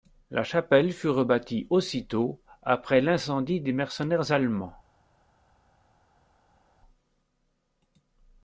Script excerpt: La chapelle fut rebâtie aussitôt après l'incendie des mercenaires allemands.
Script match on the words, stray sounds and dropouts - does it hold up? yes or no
yes